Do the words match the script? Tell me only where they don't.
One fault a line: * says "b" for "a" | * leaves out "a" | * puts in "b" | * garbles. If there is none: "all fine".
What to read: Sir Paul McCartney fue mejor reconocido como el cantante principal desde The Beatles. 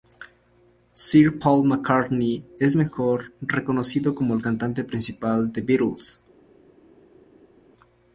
* says "es" for "fue"
* says "de" for "desde"